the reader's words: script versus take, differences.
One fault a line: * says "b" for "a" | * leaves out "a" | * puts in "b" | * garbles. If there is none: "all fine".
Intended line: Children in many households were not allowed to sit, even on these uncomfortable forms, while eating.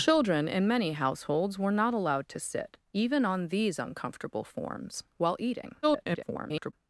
* garbles